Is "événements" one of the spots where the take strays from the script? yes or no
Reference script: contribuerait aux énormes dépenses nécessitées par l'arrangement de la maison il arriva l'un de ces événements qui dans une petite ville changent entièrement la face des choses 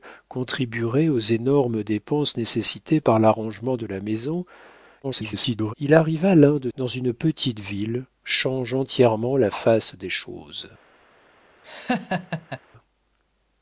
yes